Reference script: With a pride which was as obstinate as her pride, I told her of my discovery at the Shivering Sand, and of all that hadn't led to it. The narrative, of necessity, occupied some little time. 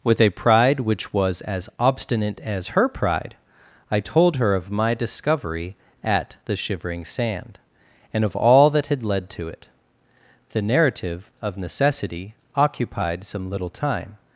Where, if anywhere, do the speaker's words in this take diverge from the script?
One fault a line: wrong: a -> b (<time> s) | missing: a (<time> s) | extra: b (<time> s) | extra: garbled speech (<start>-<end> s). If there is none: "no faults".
wrong: hadn't -> had (8.9 s)